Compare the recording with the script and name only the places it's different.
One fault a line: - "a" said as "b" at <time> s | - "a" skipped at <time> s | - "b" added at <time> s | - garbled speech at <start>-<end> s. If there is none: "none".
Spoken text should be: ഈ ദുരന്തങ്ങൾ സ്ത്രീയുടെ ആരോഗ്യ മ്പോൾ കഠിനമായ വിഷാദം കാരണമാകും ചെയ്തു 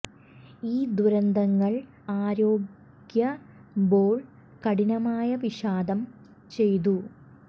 - "സ്ത്രീയുടെ" skipped at 1.7 s
- "കാരണമാകും" skipped at 6.0 s